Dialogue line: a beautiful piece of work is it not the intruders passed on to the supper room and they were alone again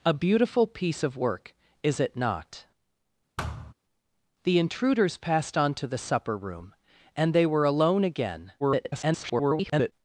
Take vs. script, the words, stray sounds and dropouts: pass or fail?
fail